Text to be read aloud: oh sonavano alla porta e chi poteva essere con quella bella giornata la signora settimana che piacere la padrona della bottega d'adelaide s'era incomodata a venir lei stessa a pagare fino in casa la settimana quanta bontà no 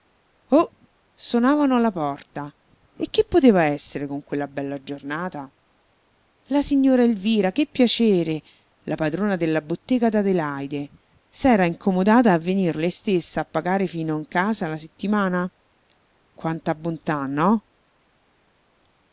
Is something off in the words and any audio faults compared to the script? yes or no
yes